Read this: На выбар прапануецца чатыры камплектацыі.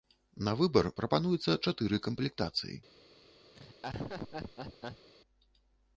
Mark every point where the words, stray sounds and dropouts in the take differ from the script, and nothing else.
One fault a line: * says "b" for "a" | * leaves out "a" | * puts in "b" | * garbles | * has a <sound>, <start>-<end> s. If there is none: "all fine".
* has a laugh, 3.5-5.1 s